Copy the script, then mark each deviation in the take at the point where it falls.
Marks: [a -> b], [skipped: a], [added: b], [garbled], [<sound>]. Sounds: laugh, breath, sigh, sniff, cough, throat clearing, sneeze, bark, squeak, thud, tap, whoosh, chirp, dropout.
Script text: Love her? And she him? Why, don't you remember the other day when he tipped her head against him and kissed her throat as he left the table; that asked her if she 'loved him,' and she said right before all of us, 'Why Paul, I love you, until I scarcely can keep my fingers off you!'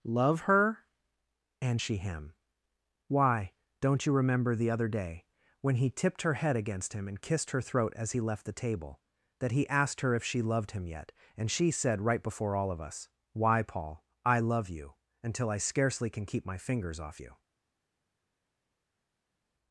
Love her? And she him? Why, don't you remember the other day when he tipped her head against him and kissed her throat as he left the table; that [added: he] asked her if she 'loved him,' [added: yet] and she said right before all of us, 'Why Paul, I love you, until I scarcely can keep my fingers off you!'